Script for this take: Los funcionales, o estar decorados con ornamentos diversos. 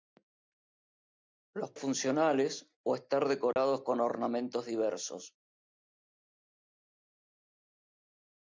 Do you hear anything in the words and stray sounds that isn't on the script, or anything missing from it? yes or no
yes